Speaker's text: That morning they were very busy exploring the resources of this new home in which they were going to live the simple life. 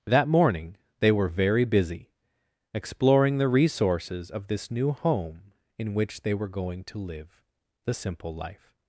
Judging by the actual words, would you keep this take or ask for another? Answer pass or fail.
pass